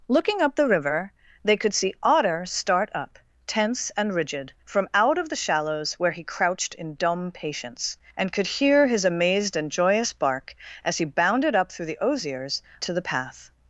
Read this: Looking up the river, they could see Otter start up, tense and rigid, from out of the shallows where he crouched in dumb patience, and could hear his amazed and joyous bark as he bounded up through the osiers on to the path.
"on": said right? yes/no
no